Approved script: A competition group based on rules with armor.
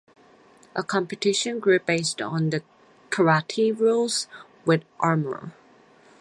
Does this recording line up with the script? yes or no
no